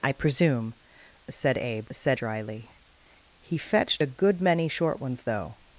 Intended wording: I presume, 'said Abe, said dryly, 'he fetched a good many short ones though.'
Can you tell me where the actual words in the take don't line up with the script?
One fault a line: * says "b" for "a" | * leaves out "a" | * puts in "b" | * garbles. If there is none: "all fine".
all fine